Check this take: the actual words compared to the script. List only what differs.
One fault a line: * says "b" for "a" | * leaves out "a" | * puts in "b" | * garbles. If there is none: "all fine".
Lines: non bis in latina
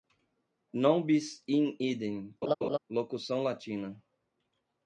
* puts in "idem locução"